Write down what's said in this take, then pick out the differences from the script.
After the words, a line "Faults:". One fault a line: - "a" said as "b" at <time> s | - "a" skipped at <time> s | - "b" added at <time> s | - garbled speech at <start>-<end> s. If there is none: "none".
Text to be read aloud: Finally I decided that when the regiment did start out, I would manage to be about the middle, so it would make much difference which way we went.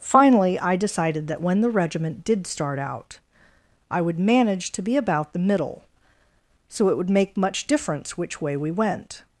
Finally I decided that when the regiment did start out, I would manage to be about the middle, so it would make much difference which way we went.
Faults:
none